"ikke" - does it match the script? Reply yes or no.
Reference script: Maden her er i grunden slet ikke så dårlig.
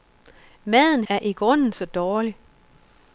no